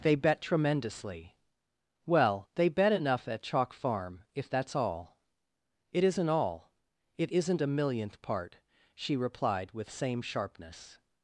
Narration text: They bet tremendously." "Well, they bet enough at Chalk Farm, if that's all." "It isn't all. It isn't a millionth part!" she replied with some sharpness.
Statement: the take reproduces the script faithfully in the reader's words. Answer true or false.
false